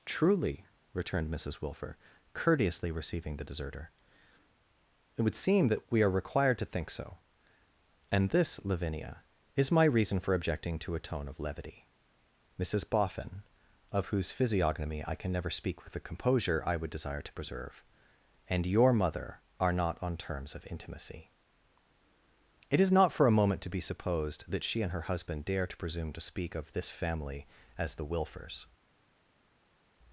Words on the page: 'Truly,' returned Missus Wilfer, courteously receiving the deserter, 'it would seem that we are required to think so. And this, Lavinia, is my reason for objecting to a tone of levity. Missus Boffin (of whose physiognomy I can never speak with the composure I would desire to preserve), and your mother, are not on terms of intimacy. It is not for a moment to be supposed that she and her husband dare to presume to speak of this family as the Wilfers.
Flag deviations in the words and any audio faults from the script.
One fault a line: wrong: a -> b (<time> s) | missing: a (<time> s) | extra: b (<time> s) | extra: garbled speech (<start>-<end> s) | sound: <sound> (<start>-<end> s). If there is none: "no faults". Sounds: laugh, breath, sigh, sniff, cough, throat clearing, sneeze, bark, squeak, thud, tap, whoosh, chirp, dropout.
no faults